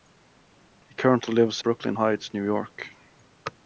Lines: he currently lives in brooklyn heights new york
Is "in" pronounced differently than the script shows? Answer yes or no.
yes